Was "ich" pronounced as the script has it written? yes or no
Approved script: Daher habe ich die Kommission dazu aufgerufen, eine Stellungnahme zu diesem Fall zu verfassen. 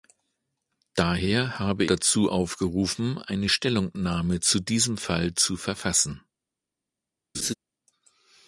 no